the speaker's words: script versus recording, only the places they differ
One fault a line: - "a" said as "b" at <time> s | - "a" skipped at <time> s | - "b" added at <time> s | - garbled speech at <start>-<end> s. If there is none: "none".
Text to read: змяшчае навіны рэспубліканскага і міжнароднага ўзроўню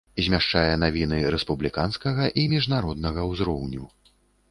none